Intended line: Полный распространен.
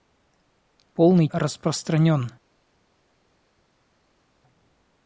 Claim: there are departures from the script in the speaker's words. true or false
false